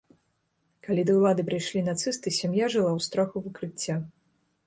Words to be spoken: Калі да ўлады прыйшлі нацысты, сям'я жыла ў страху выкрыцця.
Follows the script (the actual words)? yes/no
yes